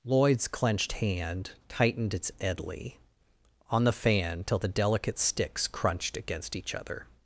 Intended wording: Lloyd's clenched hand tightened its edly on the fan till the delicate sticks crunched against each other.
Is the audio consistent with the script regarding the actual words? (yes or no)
yes